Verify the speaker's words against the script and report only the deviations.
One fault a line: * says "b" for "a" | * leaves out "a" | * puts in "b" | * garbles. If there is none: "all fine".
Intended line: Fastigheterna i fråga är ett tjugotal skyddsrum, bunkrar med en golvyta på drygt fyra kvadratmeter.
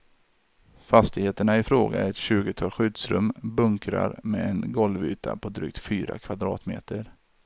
all fine